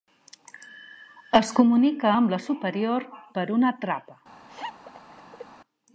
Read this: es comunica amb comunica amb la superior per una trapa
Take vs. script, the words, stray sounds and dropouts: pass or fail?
fail